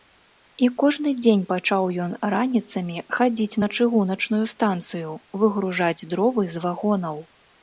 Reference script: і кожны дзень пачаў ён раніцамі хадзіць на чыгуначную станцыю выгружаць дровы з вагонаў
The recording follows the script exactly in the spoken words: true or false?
true